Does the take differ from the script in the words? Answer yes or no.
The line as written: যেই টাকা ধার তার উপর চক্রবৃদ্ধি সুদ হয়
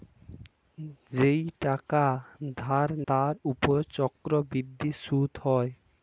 no